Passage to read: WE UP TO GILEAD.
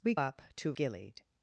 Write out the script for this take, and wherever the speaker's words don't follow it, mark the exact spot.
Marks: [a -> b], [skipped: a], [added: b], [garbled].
WE UP TO GILEAD.